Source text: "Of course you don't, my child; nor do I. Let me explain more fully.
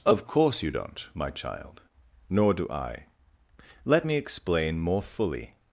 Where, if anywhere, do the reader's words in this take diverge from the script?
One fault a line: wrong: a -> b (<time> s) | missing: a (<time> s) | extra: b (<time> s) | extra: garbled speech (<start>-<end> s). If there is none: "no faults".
no faults